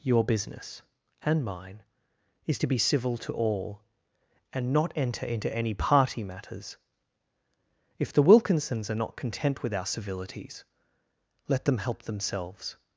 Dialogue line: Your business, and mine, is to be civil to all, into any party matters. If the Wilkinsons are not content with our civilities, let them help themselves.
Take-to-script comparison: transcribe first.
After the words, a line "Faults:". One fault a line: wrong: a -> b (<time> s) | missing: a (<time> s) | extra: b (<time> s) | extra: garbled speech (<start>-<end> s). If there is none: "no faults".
Your business, and mine, is to be civil to all, and not enter into any party matters. If the Wilkinsons are not content with our civilities, let them help themselves.
Faults:
extra: and not enter (4.5 s)